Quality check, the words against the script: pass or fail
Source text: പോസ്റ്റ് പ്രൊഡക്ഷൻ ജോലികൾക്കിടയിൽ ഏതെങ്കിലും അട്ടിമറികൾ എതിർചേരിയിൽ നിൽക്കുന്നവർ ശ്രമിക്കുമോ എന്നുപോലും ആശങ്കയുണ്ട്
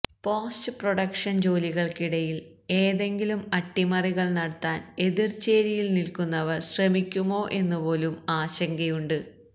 fail